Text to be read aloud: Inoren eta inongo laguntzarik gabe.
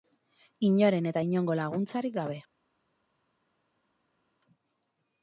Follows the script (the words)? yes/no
yes